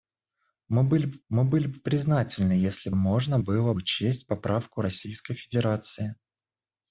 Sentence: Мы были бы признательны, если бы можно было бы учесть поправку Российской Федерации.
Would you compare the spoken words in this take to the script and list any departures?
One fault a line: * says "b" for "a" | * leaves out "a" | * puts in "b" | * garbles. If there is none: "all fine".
* puts in "мы были бы"
* leaves out "бы"
* leaves out "бы"